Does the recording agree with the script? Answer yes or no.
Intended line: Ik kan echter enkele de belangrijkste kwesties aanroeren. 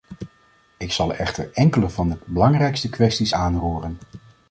no